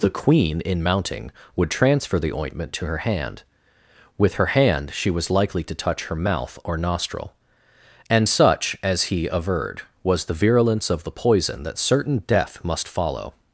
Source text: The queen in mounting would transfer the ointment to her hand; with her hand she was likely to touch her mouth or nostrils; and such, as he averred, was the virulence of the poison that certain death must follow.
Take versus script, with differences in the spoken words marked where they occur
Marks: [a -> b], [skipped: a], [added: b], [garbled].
The queen in mounting would transfer the ointment to her hand; with her hand she was likely to touch her mouth or [nostrils; -> nostril] and such, as he averred, was the virulence of the poison that certain death must follow.